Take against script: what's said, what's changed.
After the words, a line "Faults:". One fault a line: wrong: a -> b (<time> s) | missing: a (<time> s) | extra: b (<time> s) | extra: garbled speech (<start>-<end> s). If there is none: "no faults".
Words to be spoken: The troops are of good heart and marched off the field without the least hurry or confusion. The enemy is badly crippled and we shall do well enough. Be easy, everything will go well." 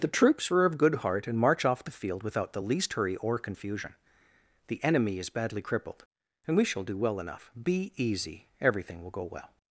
The troops are of good heart and march off the field without the least hurry or confusion. The enemy is badly crippled and we shall do well enough. Be easy, everything will go well."
Faults:
wrong: marched -> march (1.4 s)